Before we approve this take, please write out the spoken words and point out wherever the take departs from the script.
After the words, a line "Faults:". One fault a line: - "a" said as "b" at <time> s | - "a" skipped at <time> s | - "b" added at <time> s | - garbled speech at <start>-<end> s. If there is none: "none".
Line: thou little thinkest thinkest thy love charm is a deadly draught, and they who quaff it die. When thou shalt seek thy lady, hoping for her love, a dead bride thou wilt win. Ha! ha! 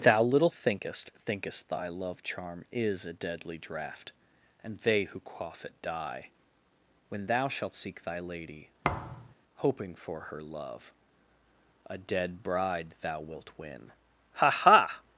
thou little thinkest thinkest thy love charm is a deadly draught, and they who quaff it die. When thou shalt seek thy lady, hoping for her love, a dead bride thou wilt win. Ha! ha!
Faults:
none